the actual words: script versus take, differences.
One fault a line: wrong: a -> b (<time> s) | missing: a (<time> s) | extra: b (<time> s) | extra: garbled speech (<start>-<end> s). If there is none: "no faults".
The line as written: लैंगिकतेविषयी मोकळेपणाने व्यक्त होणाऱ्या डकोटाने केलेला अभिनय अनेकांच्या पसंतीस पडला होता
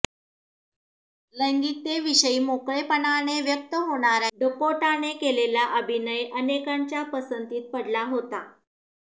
no faults